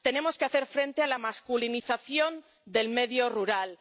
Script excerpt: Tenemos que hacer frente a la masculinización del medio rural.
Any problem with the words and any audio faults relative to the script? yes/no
no